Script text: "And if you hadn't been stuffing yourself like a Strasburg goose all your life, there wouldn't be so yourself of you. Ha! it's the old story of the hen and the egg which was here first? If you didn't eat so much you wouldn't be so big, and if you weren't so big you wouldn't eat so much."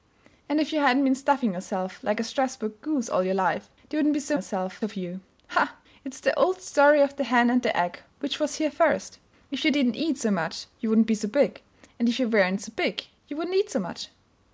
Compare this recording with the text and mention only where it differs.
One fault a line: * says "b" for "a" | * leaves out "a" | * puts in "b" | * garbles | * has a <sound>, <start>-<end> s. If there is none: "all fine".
all fine